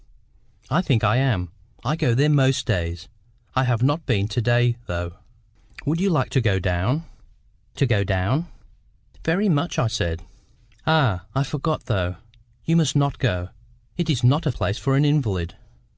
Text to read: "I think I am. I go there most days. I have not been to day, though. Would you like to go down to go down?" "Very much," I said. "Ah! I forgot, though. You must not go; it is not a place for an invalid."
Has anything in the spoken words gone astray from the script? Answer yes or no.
no